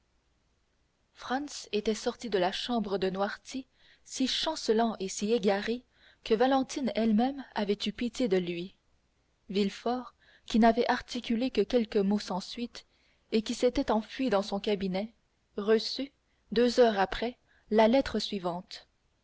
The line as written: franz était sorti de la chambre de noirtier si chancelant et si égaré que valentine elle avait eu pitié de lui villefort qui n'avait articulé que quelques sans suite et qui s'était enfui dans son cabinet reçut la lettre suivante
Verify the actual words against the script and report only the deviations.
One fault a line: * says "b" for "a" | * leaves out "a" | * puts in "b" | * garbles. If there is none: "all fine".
* puts in "même"
* puts in "mots"
* puts in "deux heures après"